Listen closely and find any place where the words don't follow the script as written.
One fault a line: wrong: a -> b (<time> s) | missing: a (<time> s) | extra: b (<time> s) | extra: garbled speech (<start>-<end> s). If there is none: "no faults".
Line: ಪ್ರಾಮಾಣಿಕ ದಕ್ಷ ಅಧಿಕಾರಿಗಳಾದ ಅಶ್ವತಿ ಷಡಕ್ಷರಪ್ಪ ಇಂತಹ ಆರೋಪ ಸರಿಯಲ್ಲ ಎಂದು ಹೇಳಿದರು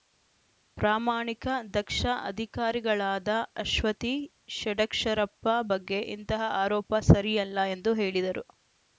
extra: ಬಗ್ಗೆ (5.7 s)